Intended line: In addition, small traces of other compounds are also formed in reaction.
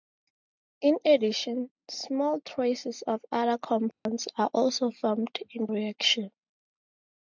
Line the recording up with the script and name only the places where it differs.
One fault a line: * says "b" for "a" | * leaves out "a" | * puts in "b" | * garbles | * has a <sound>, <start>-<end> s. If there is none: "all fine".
* has a dropout, 3.9-4.1 s